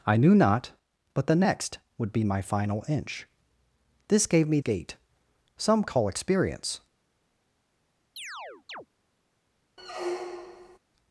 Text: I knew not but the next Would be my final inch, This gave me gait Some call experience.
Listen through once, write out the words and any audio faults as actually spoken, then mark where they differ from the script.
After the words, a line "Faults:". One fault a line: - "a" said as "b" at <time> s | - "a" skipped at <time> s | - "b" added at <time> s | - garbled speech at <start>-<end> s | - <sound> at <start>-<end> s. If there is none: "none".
I knew not but the next Would be my final inch, This gave me gait Some call experience.
Faults:
- chirp at 8.2-8.9 s
- squeak at 9.8-10.8 s